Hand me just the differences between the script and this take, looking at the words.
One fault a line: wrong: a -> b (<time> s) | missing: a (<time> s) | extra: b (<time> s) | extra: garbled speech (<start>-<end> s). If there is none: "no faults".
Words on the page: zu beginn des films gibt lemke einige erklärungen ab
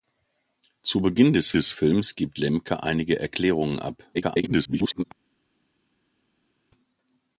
extra: des (1.5 s)
extra: garbled speech (4.1-5.0 s)